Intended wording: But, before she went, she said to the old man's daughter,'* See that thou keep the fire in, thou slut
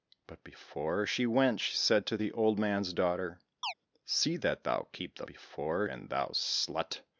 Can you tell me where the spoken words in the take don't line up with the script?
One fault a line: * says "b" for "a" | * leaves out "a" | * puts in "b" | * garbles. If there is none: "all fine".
* says "before" for "fire"